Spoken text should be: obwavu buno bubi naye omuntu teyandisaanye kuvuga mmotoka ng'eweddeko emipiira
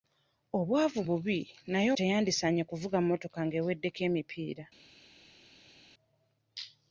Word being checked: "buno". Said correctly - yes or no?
no